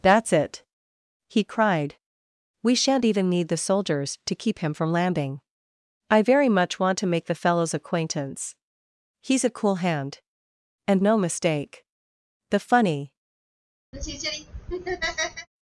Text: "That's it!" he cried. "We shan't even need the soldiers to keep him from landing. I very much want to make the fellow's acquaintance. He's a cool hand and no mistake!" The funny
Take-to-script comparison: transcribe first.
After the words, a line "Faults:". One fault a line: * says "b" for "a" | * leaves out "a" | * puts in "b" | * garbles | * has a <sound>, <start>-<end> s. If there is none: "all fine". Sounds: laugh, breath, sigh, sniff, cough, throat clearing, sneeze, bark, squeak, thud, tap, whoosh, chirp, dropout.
"That's it!" he cried. "We shan't even need the soldiers to keep him from landing. I very much want to make the fellow's acquaintance. He's a cool hand and no mistake!" The funny
Faults:
* has a laugh, 13.9-15.5 s